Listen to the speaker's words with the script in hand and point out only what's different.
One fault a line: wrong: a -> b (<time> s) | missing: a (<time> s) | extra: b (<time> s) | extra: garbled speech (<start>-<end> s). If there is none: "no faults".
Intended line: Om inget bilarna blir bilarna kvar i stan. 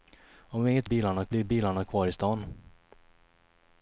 no faults